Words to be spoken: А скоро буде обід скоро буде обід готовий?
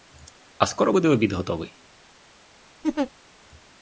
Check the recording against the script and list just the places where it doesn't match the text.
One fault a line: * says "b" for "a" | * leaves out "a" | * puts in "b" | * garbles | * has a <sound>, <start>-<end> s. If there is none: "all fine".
* leaves out "скоро буде обід"
* has a laugh, 2.8-3.1 s